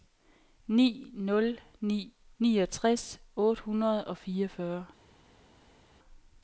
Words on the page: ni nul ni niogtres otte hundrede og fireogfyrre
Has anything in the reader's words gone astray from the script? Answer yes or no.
no